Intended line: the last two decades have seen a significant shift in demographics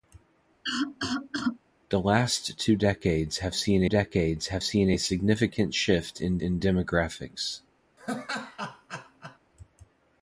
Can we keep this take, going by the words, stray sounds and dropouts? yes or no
no